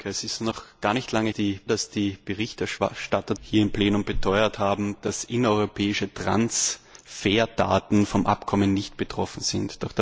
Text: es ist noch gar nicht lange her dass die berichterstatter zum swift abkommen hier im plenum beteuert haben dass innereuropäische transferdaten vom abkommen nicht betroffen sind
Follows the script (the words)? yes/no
no